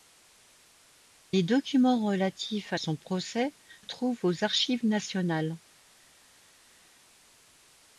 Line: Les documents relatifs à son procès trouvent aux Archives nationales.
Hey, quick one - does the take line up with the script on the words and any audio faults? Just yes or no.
yes